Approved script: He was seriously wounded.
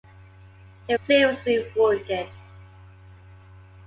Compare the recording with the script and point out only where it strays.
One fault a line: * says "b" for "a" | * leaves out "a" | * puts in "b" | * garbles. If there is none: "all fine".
* leaves out "was"